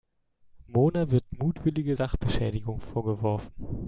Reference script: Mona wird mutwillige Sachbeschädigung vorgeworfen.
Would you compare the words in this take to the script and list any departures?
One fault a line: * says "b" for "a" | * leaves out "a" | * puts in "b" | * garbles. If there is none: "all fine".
all fine